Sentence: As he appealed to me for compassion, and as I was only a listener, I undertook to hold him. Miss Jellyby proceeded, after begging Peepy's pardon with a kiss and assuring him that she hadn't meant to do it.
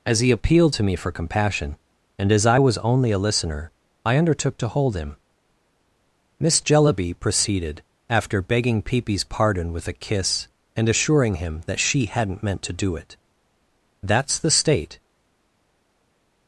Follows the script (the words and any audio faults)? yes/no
no